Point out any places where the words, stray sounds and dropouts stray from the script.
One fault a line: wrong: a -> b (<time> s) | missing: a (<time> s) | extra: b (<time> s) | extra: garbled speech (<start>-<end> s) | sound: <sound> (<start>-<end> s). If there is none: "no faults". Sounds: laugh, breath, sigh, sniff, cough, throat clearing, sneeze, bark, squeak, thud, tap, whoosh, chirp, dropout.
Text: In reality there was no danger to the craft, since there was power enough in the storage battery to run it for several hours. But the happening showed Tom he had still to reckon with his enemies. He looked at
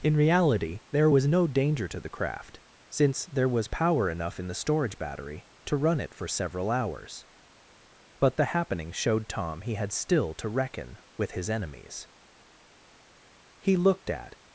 no faults